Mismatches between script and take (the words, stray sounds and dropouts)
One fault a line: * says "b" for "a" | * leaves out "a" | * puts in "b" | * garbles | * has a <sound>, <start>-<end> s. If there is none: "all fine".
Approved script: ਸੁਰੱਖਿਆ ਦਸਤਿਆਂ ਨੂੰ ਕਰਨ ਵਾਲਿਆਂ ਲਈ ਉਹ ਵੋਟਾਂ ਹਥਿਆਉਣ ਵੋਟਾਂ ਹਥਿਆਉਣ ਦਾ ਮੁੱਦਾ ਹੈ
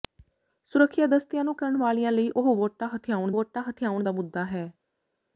all fine